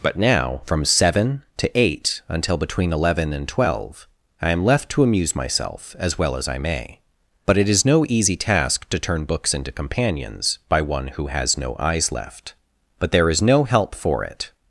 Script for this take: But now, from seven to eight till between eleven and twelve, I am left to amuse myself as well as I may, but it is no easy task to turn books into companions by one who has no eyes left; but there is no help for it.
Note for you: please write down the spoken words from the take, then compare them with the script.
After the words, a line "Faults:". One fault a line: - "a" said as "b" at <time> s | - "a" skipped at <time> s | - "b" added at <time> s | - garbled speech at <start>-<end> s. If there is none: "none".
But now, from seven to eight until between eleven and twelve, I am left to amuse myself as well as I may, but it is no easy task to turn books into companions by one who has no eyes left; but there is no help for it.
Faults:
- "till" said as "until" at 2.3 s